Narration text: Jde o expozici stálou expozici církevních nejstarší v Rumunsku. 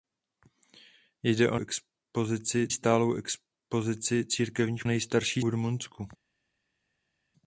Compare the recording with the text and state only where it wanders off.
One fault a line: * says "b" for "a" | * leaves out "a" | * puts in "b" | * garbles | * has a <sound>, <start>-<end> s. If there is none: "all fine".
all fine